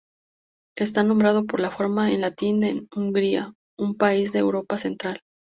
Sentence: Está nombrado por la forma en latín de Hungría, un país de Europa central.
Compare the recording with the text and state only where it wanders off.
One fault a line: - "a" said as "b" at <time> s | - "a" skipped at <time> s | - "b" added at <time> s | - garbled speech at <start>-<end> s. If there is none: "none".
none